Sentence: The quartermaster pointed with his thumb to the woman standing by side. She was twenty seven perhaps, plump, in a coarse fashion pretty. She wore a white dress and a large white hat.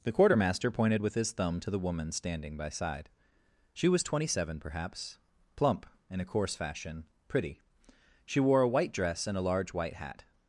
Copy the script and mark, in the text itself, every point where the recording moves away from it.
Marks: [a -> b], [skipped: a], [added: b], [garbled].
The quartermaster pointed with his thumb to the woman standing by side. She was twenty seven perhaps, plump, in a coarse fashion pretty. She wore a white dress and a large white hat.